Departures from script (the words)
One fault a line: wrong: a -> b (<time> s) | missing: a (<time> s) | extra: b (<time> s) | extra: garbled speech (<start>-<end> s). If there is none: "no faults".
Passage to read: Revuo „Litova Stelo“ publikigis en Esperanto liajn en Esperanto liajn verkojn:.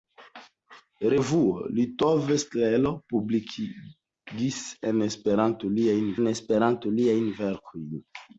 no faults